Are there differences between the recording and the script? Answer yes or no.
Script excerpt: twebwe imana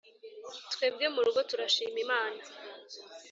yes